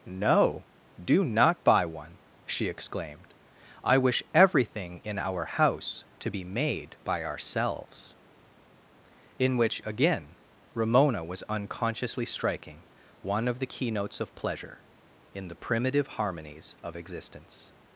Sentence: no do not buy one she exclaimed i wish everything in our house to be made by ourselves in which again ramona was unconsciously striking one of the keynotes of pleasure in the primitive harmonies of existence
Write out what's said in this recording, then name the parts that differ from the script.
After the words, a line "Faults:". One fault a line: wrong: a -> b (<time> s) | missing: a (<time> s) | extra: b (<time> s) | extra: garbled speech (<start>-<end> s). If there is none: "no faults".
no do not buy one she exclaimed i wish everything in our house to be made by ourselves in which again ramona was unconsciously striking one of the keynotes of pleasure in the primitive harmonies of existence
Faults:
no faults